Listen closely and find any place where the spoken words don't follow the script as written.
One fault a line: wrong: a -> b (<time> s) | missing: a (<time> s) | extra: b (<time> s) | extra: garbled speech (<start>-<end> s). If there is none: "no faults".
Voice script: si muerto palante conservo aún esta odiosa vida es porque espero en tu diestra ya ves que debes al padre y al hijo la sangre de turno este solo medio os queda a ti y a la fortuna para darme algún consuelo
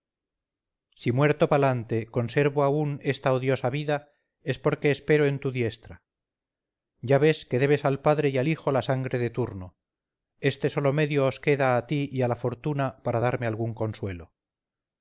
no faults